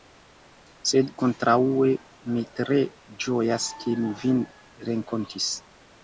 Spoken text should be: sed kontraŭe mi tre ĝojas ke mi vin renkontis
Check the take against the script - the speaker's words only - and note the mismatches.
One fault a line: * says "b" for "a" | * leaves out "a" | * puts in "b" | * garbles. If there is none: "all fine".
all fine